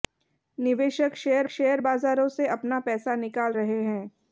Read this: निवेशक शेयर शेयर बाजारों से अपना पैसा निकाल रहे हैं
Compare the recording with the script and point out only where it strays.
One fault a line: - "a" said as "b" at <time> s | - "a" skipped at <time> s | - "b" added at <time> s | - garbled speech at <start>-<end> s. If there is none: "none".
none